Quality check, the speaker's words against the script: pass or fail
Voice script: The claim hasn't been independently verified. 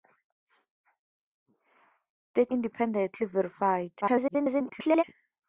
fail